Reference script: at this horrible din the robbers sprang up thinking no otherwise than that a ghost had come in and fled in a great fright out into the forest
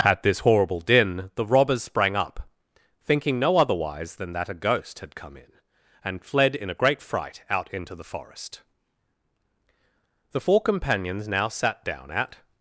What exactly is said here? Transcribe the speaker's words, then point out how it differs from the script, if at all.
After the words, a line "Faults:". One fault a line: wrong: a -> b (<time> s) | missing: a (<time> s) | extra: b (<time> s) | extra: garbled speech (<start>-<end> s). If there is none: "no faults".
at this horrible din the robbers sprang up thinking no otherwise than that a ghost had come in and fled in a great fright out into the forest the four companions now sat down at
Faults:
extra: the four companions now sat down at (10.3 s)